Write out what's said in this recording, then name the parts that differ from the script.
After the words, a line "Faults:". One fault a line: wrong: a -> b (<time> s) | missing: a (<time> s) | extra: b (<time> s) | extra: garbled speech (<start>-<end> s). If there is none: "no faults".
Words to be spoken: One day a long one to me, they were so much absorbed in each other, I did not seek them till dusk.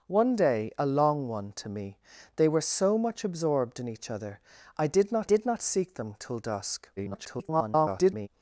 One day a long one to me, they were so much absorbed in each other, I did not did not seek them till dusk. [garbled]
Faults:
extra: did not (5.2 s)
extra: garbled speech (7.0-8.3 s)